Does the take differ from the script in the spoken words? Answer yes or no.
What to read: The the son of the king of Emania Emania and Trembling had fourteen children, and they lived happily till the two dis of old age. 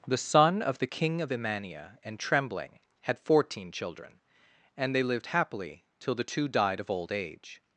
yes